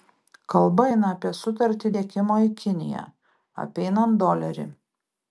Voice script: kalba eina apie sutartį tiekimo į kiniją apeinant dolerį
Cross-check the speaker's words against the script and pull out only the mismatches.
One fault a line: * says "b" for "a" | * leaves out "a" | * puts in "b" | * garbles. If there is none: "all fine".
all fine